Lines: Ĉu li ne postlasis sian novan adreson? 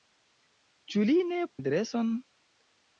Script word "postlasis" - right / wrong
wrong